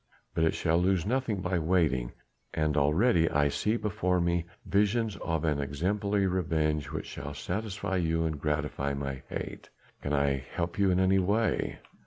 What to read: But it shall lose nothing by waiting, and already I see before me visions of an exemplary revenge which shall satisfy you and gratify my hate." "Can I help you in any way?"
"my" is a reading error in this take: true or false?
false